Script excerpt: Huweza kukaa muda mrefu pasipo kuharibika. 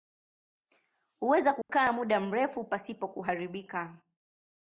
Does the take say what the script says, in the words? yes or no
yes